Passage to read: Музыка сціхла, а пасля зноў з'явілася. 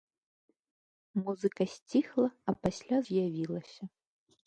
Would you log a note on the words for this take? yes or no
yes